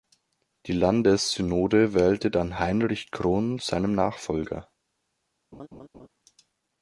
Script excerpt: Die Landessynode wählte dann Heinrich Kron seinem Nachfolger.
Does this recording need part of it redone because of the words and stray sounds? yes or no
yes